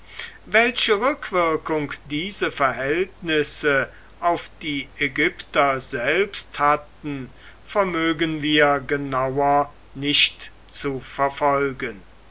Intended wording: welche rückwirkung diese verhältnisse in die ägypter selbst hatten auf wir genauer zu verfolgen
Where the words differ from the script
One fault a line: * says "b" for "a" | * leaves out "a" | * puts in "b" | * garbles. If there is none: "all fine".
* says "auf" for "in"
* says "vermögen" for "auf"
* puts in "nicht"